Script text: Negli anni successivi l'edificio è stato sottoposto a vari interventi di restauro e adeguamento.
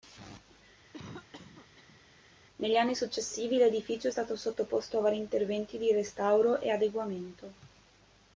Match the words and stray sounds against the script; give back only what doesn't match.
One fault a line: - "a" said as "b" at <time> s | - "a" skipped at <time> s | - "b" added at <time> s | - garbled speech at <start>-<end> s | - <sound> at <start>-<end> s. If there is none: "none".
- cough at 0.9-2.0 s